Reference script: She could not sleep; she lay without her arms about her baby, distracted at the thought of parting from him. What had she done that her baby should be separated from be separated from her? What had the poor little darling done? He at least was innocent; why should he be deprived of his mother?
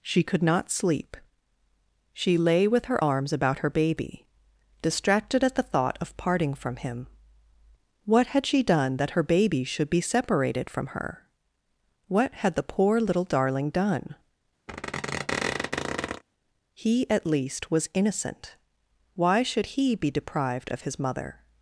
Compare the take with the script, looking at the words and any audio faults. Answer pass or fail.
fail